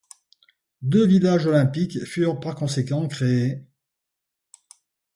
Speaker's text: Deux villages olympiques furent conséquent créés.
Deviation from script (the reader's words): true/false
true